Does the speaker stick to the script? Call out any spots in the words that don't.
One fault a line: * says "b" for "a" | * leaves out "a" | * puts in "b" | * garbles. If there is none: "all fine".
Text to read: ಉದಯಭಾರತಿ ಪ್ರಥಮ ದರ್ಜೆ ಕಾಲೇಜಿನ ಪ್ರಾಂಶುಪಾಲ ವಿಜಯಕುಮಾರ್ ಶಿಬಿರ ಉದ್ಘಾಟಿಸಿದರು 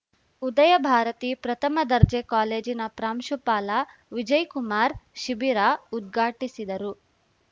all fine